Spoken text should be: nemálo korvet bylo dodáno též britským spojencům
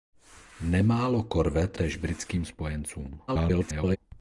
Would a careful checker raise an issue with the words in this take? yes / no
yes